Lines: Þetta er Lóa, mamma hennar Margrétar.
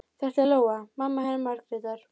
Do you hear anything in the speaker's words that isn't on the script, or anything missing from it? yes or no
no